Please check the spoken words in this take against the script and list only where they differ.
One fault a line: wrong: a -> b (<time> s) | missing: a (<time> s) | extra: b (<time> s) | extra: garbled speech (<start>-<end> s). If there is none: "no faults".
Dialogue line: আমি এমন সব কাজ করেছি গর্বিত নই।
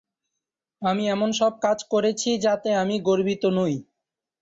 extra: যাতে আমি (2.5 s)